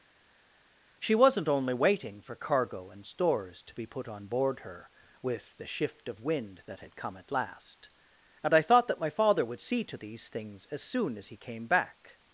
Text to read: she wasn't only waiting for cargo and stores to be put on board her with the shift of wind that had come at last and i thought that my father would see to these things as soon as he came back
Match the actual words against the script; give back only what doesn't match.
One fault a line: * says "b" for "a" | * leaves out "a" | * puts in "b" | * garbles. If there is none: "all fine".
all fine